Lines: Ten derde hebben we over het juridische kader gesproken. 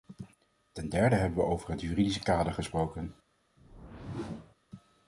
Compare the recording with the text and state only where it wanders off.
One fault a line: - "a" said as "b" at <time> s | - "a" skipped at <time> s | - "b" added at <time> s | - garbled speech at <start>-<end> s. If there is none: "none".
none